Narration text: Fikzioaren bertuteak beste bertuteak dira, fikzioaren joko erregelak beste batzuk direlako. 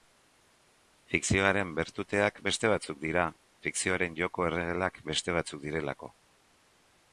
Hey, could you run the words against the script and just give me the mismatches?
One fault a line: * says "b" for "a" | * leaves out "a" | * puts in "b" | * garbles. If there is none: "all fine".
* says "batzuk" for "bertuteak"